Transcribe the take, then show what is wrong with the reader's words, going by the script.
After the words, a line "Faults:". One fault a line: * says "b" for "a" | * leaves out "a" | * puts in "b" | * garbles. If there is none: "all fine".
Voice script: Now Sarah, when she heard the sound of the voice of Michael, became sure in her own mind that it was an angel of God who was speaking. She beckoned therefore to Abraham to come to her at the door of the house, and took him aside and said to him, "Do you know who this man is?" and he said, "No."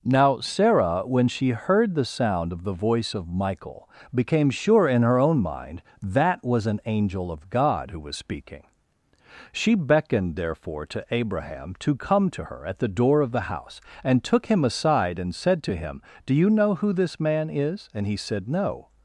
Now Sarah, when she heard the sound of the voice of Michael, became sure in her own mind that was an angel of God who was speaking. She beckoned therefore to Abraham to come to her at the door of the house, and took him aside and said to him, "Do you know who this man is?" and he said, "No."
Faults:
* leaves out "it"